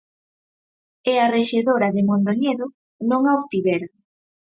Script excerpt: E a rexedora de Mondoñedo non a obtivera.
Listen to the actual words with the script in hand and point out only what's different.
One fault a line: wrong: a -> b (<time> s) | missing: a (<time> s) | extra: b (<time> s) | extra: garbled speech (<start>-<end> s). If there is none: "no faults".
no faults